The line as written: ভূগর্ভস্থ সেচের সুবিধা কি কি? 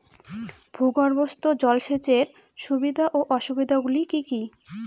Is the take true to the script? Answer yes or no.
no